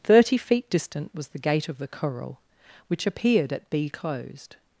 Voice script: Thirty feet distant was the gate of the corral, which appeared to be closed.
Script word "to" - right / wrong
wrong